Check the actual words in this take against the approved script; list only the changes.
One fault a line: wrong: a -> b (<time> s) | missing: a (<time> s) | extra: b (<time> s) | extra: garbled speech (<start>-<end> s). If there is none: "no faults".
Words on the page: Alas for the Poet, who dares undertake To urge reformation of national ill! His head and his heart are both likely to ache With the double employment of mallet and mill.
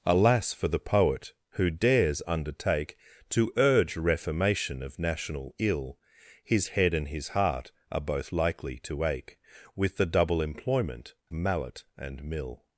missing: of (11.1 s)